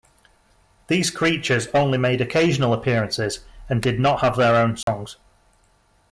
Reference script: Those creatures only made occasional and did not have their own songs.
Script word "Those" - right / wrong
wrong